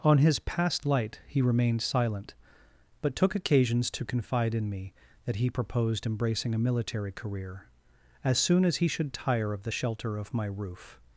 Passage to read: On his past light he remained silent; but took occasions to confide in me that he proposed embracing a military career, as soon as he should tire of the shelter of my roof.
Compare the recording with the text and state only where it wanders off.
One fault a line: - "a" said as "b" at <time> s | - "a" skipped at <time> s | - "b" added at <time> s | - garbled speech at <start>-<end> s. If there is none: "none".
none